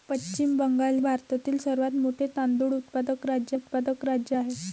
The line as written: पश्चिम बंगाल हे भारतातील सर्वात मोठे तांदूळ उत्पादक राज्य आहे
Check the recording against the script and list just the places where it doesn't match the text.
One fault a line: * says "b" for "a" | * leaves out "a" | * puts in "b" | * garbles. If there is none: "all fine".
* leaves out "हे"
* puts in "उत्पादक राज्य"